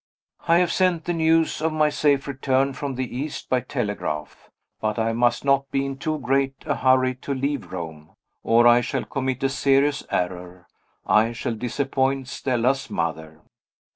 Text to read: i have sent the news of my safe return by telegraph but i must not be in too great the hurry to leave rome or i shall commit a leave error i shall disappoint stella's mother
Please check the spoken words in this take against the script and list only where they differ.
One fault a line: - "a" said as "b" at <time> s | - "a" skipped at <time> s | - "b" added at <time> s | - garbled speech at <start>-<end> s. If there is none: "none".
- "from the east" added at 2.7 s
- "the" said as "a" at 6.6 s
- "leave" said as "serious" at 9.5 s